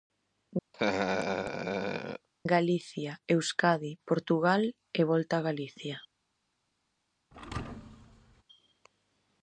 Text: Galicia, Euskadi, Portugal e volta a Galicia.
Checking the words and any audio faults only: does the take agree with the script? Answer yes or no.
no